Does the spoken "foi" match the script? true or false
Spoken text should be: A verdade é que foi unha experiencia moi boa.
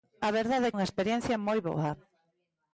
false